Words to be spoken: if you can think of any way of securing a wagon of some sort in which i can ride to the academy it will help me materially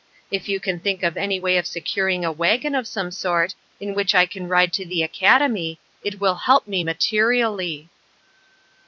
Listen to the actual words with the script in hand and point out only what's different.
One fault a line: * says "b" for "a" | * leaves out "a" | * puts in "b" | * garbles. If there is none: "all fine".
all fine